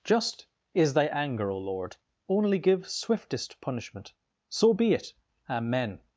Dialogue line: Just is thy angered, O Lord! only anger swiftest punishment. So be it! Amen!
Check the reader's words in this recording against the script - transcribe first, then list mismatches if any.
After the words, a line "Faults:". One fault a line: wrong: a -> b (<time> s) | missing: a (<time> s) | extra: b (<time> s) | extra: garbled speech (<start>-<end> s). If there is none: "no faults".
Just is thy anger, O Lord! only give swiftest punishment. So be it! Amen!
Faults:
wrong: angered -> anger (1.1 s)
wrong: anger -> give (2.6 s)